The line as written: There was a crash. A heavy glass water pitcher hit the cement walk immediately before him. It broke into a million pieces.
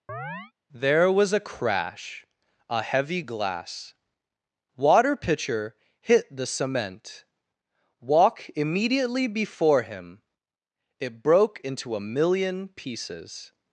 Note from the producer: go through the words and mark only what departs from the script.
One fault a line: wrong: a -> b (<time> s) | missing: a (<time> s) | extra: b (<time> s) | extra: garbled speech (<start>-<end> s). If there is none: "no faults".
no faults